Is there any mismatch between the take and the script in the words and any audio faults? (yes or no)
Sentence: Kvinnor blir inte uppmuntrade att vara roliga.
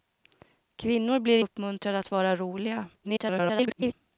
yes